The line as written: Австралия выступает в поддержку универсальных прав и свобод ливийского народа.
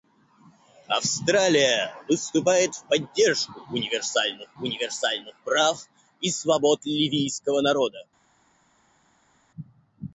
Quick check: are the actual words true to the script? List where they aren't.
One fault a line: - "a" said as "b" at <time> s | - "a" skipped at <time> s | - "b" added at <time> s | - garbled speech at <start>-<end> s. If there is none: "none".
- "универсальных" added at 4.6 s